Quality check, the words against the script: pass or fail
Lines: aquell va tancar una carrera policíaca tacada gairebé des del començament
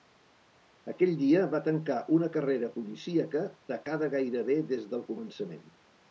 fail